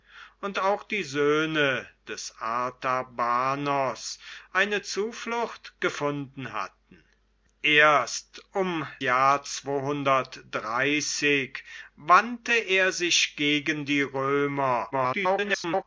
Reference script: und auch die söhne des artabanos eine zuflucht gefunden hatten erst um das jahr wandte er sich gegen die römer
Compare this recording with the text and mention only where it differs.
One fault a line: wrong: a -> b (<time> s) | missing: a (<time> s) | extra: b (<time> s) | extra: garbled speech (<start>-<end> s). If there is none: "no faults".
missing: das (8.9 s)
extra: garbled speech (14.9-15.8 s)